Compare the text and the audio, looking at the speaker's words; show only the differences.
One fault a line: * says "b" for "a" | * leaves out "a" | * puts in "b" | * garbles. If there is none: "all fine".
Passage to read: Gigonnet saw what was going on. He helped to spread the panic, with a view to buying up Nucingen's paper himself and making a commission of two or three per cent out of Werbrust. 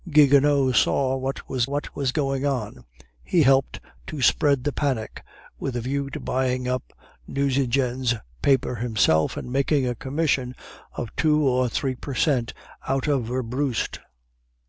* puts in "what was"